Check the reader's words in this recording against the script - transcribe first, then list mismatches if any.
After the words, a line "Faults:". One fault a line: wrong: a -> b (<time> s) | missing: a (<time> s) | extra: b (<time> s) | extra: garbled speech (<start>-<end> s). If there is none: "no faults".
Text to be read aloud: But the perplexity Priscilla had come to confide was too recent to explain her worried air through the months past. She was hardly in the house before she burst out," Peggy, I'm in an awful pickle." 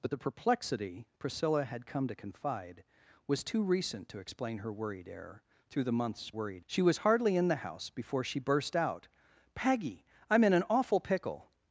But the perplexity Priscilla had come to confide was too recent to explain her worried air through the months worried. She was hardly in the house before she burst out," Peggy, I'm in an awful pickle."
Faults:
wrong: past -> worried (6.3 s)